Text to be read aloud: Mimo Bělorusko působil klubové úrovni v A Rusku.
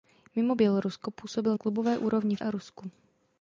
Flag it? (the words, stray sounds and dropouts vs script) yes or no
no